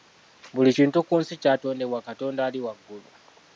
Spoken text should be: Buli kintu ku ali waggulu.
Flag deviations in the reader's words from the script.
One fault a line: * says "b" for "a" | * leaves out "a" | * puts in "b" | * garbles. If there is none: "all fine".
* puts in "nsi kyatondebwa Katonda"